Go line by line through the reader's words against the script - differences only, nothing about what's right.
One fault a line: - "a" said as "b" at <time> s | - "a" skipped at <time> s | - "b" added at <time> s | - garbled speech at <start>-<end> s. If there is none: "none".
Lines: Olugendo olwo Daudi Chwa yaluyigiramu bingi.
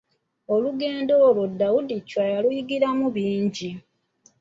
none